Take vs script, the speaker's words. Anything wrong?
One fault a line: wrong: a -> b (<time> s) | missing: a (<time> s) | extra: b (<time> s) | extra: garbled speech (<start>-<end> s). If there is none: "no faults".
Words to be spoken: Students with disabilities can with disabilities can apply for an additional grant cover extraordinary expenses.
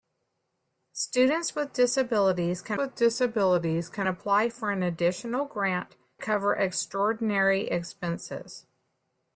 no faults